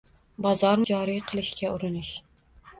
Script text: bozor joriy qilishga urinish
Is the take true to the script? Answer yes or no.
yes